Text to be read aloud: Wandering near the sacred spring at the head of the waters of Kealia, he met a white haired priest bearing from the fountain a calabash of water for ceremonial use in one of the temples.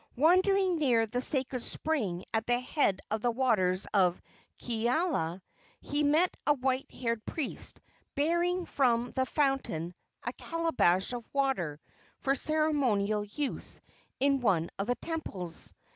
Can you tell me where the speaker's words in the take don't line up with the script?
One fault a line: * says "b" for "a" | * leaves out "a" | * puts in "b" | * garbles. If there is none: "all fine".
all fine